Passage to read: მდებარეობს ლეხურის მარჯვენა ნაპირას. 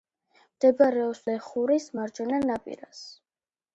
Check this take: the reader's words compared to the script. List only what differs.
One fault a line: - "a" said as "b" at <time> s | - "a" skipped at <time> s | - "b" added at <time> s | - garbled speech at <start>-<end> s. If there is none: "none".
none